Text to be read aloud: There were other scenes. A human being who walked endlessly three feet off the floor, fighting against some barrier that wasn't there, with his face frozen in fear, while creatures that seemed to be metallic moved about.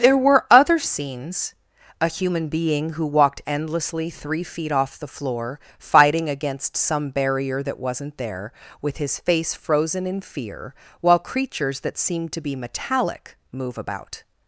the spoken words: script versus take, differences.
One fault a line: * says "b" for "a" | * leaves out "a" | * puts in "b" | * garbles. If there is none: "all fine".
* says "move" for "moved"